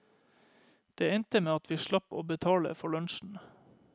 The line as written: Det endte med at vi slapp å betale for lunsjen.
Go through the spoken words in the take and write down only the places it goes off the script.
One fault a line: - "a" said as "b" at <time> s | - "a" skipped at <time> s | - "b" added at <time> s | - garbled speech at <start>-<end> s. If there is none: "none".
none